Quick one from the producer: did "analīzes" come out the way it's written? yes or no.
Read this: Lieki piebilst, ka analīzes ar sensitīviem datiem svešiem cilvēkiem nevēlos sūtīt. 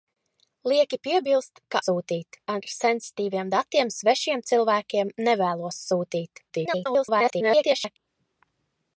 no